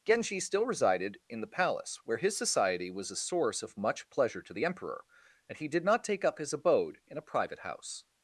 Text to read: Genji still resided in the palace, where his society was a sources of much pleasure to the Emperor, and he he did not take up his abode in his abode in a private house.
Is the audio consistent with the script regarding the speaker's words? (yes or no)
no